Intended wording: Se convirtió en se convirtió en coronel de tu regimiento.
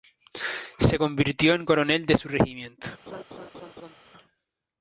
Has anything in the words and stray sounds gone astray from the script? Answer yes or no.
yes